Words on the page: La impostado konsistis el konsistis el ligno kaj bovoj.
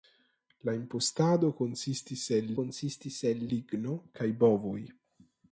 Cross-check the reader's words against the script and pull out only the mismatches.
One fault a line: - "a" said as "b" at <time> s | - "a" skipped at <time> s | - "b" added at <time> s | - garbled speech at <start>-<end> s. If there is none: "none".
none